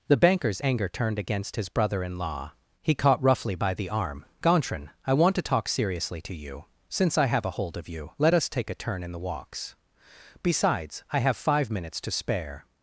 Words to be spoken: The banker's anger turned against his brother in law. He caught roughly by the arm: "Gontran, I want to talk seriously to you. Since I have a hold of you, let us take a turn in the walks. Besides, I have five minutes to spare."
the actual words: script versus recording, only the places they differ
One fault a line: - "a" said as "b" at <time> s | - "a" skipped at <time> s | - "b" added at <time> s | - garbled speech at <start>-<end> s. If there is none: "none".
none